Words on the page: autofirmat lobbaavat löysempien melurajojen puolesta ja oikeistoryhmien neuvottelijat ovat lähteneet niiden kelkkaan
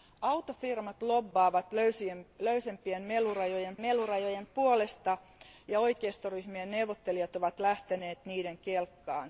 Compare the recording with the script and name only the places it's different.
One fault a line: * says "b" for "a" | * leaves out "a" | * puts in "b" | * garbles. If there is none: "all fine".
* puts in "melurajojen"